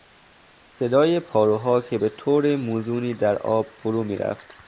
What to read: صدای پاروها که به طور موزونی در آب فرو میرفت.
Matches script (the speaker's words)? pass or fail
pass